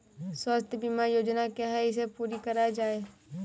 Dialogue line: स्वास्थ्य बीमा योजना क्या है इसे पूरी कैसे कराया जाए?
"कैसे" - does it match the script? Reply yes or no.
no